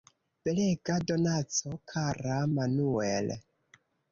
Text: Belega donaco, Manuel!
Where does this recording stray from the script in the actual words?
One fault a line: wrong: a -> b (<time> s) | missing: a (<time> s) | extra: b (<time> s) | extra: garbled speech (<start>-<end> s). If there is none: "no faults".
extra: kara (1.9 s)